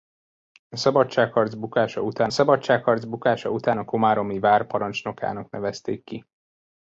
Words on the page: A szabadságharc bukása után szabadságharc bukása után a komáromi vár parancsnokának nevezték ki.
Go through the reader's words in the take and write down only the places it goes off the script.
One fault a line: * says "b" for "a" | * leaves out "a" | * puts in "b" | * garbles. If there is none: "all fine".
all fine